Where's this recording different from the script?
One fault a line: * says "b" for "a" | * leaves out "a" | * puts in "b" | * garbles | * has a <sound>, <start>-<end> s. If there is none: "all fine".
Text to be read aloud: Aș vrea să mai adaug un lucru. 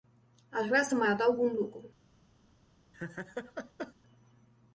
* has a laugh, 2.9-3.9 s